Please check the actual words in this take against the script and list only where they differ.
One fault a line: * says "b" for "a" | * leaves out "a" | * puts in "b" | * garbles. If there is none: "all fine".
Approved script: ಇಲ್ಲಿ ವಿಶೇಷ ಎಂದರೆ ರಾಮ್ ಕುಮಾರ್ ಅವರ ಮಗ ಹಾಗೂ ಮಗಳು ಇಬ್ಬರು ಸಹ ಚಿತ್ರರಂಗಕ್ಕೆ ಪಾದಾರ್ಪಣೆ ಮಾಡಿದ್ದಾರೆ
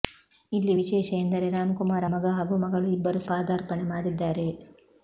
* leaves out "ಅವರ"
* leaves out "ಸಹ ಚಿತ್ರರಂಗಕ್ಕೆ"